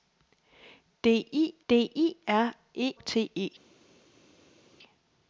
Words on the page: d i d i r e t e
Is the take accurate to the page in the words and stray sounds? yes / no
yes